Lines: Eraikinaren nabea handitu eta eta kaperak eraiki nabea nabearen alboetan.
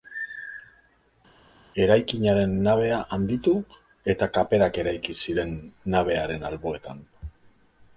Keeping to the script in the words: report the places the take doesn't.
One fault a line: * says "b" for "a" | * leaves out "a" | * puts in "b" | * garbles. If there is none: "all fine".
* leaves out "eta"
* says "ziren" for "nabea"